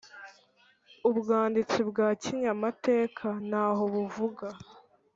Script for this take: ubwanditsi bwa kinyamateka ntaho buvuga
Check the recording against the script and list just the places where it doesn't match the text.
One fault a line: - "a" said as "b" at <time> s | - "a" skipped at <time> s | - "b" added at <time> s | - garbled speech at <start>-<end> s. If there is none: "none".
none